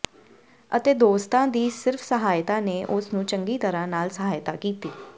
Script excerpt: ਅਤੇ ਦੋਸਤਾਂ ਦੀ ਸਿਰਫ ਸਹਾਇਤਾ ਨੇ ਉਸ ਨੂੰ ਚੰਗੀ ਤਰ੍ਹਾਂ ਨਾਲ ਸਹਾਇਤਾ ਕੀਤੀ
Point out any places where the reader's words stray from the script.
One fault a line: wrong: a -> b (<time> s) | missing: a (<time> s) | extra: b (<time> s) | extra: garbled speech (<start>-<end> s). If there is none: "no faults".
no faults